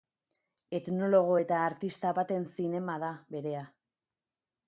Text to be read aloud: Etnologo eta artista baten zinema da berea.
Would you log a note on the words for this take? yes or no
no